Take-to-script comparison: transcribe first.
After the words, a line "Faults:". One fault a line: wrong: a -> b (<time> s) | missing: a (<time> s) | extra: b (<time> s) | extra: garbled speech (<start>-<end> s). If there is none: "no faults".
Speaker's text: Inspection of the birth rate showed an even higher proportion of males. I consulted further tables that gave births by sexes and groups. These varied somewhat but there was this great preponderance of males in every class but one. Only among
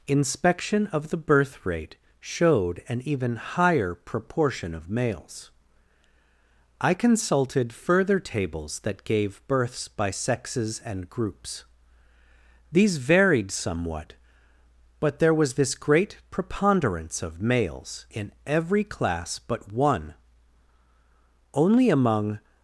Inspection of the birth rate showed an even higher proportion of males. I consulted further tables that gave births by sexes and groups. These varied somewhat but there was this great preponderance of males in every class but one. Only among
Faults:
no faults